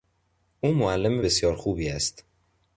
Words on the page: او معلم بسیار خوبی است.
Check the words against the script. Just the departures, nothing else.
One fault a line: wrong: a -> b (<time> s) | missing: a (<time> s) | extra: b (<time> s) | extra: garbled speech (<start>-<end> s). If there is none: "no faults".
no faults